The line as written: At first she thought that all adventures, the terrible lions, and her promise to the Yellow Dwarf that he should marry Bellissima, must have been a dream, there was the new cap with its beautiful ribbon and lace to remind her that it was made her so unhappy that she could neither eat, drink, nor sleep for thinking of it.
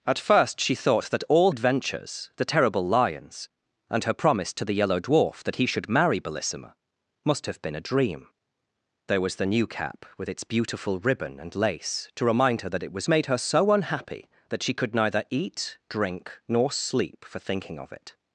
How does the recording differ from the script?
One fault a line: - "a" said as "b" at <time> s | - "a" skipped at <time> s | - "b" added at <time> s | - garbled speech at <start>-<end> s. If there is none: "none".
none